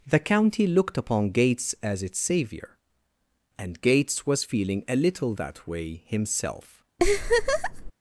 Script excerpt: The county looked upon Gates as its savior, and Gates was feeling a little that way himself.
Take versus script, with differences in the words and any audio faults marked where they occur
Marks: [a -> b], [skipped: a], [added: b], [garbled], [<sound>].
The county looked upon Gates as its savior, and Gates was feeling a little that way himself. [laugh]